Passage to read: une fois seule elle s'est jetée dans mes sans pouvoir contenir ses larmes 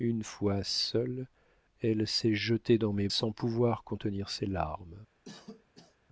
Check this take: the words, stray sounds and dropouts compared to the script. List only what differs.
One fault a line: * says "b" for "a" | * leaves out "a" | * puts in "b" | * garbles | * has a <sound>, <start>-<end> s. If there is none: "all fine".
* has a cough, 5.2-6.0 s